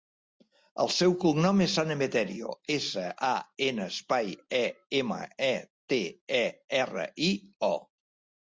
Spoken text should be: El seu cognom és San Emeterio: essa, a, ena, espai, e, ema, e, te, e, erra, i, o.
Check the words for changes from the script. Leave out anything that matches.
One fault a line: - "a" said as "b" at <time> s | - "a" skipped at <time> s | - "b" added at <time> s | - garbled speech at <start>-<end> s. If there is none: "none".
none